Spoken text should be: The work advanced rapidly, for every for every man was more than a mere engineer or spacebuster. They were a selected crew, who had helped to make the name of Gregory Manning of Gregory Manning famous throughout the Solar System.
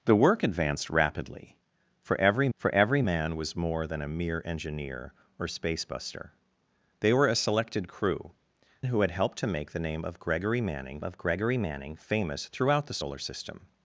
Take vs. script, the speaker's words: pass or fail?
pass